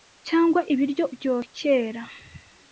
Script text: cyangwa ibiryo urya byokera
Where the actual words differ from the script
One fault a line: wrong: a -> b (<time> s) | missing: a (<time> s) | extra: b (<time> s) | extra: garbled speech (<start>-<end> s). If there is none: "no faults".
missing: urya (1.1 s)